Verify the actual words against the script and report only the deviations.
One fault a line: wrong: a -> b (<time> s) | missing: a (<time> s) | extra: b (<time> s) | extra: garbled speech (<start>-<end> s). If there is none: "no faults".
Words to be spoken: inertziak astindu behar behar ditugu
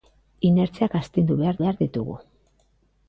no faults